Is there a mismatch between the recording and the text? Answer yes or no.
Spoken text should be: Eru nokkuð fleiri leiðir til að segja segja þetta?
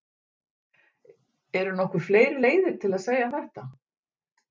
yes